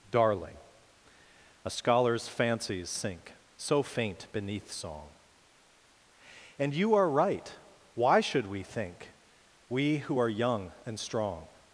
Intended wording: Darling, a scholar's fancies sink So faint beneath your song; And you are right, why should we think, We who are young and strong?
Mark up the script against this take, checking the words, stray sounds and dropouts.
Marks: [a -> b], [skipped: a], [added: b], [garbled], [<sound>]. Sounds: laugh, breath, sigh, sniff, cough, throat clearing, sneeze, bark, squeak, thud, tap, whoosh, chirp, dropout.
Darling, a scholar's fancies sink So faint beneath [skipped: your] song; And you are right, why should we think, We who are young and strong?